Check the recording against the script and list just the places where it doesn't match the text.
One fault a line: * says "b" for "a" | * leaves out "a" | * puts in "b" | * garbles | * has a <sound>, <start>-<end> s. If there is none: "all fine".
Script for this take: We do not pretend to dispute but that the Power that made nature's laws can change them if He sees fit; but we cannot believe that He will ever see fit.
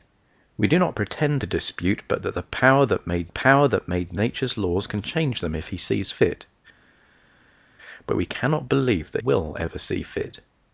* puts in "Power that made"
* leaves out "He"